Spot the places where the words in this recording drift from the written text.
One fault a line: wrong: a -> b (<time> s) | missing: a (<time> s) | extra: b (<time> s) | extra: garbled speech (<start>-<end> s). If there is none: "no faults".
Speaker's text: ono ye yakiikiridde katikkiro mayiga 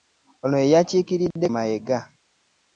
missing: katikkiro (1.5 s)